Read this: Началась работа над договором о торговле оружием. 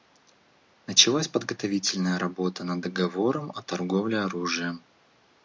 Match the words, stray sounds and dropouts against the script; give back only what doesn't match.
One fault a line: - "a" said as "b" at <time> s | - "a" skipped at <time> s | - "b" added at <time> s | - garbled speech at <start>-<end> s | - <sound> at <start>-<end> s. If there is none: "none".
- "подготовительная" added at 1.3 s